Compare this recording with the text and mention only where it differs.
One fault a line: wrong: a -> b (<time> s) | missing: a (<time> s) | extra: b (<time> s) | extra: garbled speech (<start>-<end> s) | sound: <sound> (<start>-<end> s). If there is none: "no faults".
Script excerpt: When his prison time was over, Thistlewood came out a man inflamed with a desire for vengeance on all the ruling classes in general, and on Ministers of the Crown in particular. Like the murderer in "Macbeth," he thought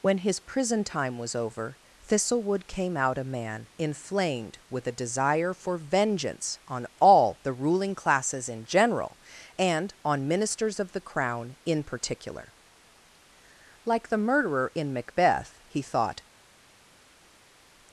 no faults